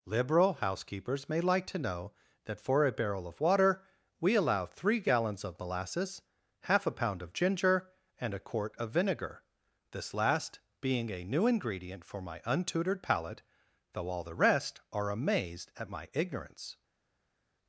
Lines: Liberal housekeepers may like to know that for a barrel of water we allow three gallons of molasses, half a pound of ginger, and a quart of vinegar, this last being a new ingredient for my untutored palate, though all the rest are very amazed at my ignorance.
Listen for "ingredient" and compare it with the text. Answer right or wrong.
right